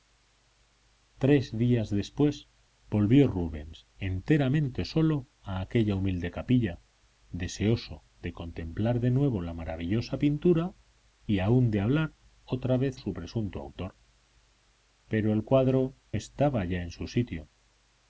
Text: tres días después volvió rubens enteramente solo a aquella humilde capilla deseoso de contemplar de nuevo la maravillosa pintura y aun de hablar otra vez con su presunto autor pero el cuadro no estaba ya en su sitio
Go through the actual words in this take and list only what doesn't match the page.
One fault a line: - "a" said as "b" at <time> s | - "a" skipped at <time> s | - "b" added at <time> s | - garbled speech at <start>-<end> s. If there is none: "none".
- "con" skipped at 13.0 s
- "no" skipped at 15.9 s